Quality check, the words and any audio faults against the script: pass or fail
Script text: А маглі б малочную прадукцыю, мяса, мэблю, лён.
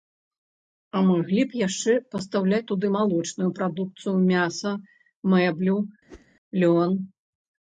fail